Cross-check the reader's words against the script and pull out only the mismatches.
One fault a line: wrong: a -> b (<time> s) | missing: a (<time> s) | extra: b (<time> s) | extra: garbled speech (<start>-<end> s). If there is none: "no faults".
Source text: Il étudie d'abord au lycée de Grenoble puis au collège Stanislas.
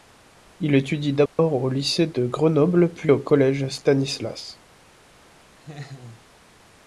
no faults